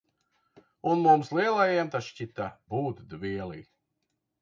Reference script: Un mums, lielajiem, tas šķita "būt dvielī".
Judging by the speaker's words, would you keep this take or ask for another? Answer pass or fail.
pass